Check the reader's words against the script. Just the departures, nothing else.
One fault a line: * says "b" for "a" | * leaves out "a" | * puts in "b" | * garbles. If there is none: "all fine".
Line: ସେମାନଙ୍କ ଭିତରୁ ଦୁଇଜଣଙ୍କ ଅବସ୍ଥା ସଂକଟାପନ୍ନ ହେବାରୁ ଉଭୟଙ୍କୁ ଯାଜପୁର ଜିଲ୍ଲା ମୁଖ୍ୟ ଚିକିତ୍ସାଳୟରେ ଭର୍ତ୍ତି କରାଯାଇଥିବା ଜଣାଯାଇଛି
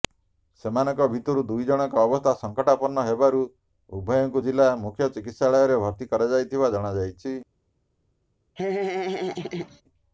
* leaves out "ଯାଜପୁର"